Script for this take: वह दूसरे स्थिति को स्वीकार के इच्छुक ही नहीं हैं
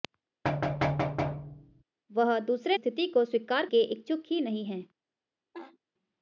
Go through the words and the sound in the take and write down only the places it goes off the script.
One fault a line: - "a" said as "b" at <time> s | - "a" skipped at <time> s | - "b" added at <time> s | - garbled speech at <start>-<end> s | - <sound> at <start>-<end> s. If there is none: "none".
- thud at 0.4-1.8 s
- laugh at 5.5-5.8 s